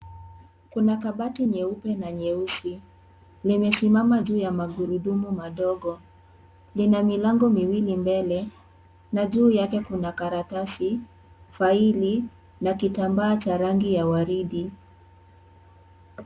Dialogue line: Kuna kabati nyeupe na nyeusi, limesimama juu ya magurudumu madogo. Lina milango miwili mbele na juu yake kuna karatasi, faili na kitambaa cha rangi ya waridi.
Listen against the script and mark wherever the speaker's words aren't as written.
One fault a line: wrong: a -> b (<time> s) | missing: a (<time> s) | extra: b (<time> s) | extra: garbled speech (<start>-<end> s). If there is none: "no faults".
no faults